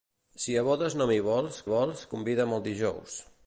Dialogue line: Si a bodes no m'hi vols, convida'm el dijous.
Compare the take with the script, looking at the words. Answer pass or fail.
fail